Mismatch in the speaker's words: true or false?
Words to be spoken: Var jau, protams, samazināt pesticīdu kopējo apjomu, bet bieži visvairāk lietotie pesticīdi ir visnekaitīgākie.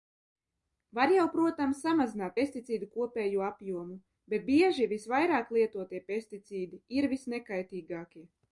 false